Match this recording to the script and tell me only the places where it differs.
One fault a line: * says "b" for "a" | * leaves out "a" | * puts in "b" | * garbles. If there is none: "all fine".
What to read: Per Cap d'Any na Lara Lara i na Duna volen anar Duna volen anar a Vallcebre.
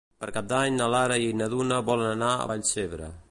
* leaves out "Lara"
* leaves out "Duna volen anar"